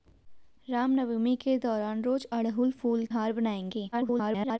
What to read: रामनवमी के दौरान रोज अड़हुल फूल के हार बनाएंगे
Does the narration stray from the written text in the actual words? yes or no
yes